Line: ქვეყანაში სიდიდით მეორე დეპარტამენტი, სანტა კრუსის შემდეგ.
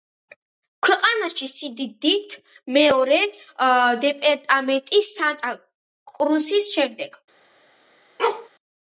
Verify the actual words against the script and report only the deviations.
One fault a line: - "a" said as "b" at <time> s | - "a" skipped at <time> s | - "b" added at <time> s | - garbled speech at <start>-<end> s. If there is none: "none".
none